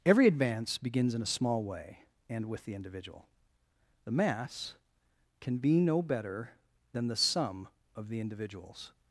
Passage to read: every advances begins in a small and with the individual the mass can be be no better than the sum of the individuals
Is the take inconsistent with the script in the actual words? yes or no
yes